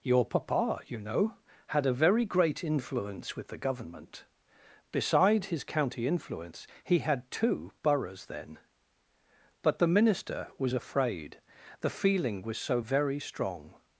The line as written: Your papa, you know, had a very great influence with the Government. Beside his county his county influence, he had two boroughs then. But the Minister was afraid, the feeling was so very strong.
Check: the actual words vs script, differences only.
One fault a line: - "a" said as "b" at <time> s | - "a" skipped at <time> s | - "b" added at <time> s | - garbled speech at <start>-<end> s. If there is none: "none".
- "his county" skipped at 6.1 s